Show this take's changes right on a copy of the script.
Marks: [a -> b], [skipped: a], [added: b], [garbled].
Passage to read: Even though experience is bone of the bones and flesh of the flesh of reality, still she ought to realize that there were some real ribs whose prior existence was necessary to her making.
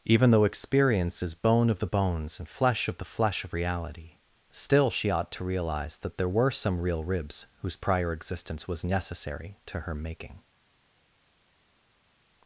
Even though experience is bone of the bones and flesh of the flesh of reality, still she ought to realize that there were some real ribs whose prior existence was necessary to her making.